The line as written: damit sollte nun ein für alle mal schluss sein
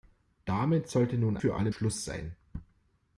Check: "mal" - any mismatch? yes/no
yes